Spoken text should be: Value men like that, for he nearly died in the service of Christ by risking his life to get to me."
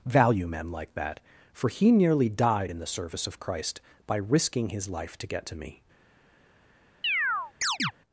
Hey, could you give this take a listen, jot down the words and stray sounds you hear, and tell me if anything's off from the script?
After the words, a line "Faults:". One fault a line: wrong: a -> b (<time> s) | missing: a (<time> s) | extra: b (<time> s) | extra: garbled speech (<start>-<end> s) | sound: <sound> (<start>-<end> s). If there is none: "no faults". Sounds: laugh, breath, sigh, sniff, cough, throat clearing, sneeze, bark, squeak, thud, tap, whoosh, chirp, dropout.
Value men like that, for he nearly died in the service of Christ by risking his life to get to me."
Faults:
sound: chirp (7.0-7.9 s)